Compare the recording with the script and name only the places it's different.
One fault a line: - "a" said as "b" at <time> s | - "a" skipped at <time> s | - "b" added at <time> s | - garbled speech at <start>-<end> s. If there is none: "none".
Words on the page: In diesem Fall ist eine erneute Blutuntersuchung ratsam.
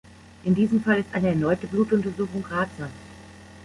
none